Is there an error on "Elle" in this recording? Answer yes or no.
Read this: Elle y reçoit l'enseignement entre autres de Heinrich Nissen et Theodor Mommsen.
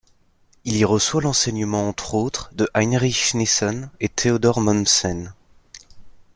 yes